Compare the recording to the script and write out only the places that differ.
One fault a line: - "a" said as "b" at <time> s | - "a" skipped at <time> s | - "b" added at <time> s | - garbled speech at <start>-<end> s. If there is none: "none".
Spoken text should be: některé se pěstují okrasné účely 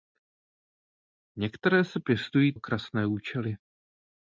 none